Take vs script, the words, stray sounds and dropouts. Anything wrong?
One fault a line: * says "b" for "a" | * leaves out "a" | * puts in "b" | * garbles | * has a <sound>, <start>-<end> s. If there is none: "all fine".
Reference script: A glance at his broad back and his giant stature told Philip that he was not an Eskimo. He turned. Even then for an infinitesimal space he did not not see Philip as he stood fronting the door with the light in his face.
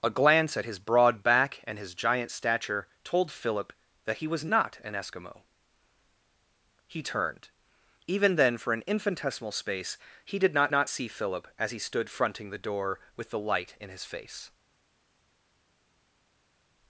all fine